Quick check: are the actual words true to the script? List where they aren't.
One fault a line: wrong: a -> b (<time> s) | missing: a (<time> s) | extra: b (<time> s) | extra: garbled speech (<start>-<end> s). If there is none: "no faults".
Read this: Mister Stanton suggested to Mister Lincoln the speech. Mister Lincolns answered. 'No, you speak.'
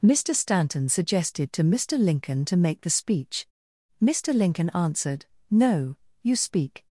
extra: to make (2.5 s)
wrong: Lincolns -> Lincoln (4.3 s)